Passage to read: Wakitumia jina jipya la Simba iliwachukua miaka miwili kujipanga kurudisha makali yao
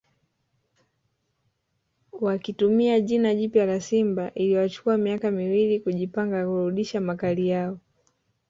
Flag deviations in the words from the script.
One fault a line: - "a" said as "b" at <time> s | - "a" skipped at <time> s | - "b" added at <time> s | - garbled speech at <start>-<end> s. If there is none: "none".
none